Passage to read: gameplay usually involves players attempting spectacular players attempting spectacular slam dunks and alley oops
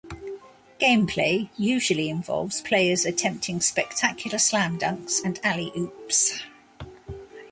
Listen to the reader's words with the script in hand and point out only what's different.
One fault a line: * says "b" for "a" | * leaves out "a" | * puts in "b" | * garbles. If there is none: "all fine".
* leaves out "players attempting spectacular"